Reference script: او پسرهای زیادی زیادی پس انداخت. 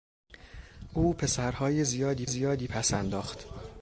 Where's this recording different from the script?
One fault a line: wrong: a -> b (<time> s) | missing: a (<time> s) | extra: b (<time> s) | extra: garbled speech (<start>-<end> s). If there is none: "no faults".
no faults